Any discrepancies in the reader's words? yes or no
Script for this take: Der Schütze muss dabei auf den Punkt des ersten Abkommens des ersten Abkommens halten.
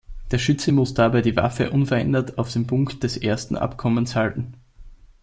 yes